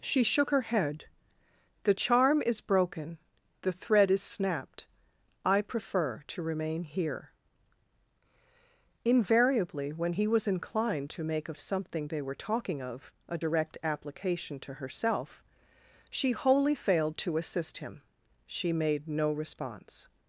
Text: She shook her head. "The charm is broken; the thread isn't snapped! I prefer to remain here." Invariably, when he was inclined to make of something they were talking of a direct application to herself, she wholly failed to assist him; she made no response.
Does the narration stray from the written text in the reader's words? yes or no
yes